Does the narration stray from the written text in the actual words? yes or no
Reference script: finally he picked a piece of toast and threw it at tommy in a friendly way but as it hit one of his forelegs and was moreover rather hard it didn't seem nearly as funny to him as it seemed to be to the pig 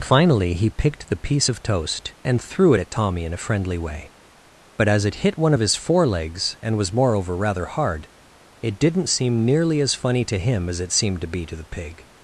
yes